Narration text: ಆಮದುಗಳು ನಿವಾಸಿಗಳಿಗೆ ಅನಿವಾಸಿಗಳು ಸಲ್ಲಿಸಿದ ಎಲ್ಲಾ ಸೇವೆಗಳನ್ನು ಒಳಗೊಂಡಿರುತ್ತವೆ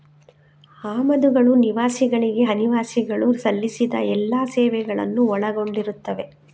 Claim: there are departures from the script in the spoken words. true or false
false